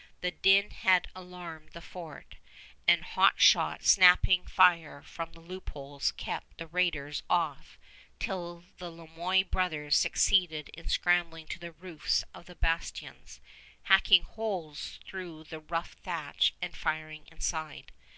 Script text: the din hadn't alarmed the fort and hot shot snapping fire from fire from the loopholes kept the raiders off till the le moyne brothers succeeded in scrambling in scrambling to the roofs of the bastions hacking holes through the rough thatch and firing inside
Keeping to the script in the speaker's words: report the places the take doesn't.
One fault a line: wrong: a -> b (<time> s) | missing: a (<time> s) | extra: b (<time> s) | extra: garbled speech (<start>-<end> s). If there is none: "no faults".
wrong: hadn't -> had (0.7 s)
missing: fire from (5.3 s)
missing: in scrambling (11.5 s)